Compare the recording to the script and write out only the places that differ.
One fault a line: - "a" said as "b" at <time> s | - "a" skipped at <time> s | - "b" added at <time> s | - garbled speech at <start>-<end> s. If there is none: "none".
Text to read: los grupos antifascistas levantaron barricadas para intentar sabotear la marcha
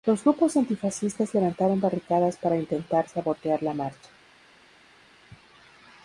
none